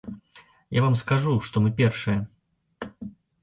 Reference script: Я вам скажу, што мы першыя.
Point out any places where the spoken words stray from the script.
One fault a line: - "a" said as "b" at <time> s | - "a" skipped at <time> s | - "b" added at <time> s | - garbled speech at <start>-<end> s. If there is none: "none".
none